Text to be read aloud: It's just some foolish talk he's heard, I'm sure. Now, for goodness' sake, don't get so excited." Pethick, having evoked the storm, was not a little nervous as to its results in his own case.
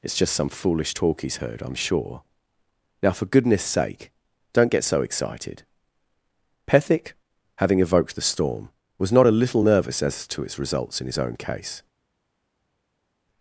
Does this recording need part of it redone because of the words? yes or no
no